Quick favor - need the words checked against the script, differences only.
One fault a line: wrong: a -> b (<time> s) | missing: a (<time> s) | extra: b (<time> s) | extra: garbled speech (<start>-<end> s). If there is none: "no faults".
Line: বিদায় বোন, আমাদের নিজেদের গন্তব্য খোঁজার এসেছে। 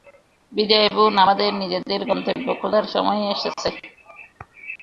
extra: সময় (2.9 s)